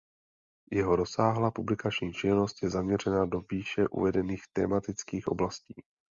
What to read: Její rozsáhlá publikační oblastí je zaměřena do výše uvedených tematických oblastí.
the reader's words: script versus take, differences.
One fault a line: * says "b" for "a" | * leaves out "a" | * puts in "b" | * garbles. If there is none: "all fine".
* says "Jeho" for "Její"
* says "činnost" for "oblastí"